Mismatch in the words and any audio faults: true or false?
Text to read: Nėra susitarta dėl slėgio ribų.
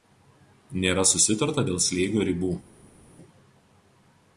false